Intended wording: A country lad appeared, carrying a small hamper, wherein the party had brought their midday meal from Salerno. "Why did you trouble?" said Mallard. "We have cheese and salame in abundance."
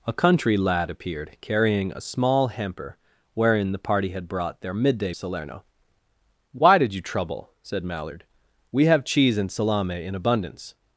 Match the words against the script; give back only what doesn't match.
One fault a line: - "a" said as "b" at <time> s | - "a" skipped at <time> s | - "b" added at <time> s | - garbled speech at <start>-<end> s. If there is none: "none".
- "meal from" skipped at 5.1 s